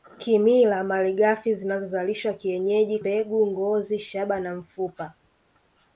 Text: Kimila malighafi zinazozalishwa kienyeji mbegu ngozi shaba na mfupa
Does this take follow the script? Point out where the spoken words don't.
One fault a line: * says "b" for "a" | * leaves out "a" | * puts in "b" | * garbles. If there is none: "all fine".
all fine